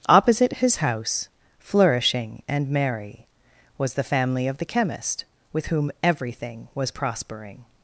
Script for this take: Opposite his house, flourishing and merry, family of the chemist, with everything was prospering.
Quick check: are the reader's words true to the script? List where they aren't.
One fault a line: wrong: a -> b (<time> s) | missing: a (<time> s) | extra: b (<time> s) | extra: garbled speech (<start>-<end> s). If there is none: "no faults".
extra: was the (3.8 s)
extra: whom (5.7 s)